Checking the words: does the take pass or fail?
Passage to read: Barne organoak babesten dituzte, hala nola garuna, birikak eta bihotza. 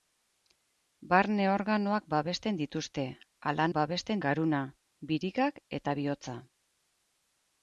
fail